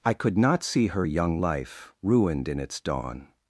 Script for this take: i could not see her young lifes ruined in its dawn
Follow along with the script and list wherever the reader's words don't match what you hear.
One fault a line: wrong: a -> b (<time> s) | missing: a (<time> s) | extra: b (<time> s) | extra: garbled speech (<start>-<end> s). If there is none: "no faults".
wrong: lifes -> life (1.4 s)